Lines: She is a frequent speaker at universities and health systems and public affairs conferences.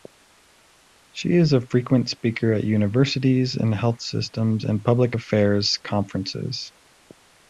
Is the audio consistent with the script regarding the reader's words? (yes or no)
yes